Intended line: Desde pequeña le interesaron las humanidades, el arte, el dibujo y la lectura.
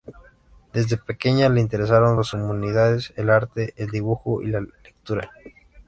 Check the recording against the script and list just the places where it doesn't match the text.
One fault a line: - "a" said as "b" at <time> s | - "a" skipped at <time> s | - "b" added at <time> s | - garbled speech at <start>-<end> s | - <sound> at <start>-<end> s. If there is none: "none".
none